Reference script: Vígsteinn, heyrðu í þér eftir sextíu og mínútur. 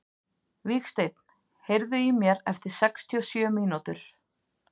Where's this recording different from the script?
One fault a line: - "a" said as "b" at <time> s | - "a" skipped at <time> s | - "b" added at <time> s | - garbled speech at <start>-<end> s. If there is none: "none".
- "þér" said as "mér" at 2.2 s
- "sjö" added at 3.3 s